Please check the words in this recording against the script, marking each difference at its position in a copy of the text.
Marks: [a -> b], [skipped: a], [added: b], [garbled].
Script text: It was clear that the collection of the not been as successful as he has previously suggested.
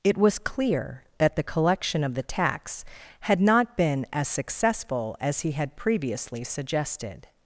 It was clear that the collection of the [added: tax had] not been as successful as he [has -> had] previously suggested.